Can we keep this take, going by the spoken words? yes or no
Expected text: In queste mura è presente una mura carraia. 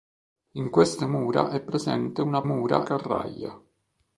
yes